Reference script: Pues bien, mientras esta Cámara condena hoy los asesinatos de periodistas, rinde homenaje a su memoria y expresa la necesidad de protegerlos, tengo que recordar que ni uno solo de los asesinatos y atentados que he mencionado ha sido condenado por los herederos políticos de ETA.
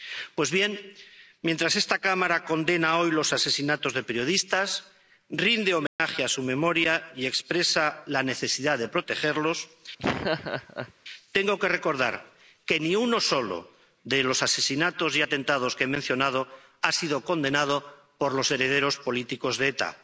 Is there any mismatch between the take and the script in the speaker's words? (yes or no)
no